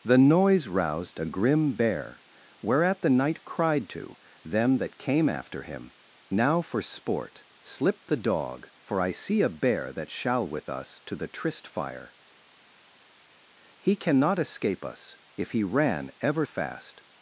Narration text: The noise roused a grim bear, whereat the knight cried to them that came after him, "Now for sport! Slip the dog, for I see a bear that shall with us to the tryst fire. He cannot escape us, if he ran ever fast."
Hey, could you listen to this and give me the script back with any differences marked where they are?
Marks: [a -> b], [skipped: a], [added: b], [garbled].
The noise roused a grim bear, whereat the knight cried to them that came after him, "Now for sport! Slip the dog, for I see a bear that shall with us to the tryst fire. He cannot escape us, if he ran ever fast."